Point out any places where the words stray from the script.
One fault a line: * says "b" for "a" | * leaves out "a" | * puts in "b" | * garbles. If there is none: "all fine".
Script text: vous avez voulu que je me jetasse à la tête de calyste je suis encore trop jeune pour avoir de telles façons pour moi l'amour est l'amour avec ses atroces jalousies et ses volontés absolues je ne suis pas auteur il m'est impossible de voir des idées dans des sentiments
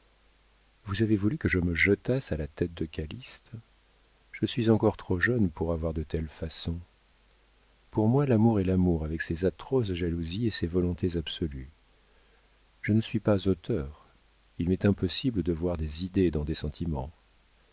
all fine